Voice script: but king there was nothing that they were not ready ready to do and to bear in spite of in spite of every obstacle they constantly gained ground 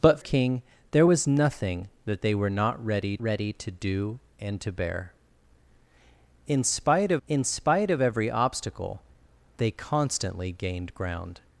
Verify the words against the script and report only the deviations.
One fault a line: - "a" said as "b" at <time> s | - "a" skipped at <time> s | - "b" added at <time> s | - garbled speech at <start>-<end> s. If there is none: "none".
none